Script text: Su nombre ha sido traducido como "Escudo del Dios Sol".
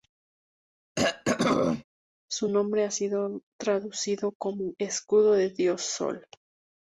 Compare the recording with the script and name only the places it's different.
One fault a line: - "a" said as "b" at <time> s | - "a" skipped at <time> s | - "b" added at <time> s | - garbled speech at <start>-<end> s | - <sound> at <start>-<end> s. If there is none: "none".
- throat clearing at 1.0-1.8 s